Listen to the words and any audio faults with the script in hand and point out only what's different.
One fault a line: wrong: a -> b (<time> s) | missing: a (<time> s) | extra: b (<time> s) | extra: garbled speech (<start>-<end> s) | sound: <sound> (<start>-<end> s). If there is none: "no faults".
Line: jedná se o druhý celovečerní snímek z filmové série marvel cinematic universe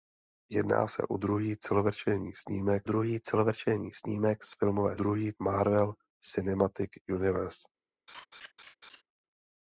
extra: druhý celovečerní snímek (2.8 s)
wrong: série -> druhý (4.9 s)
sound: laugh (8.1-9.0 s)